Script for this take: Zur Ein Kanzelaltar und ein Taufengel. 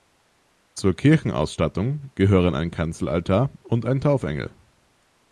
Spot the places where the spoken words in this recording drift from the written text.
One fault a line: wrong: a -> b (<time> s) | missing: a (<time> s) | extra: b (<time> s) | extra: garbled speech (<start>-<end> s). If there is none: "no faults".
extra: Kirchenausstattung gehören (0.9 s)